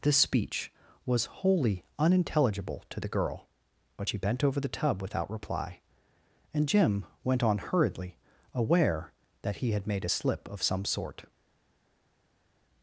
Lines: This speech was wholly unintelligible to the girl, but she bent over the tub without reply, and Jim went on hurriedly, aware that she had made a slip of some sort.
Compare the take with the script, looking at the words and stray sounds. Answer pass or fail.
fail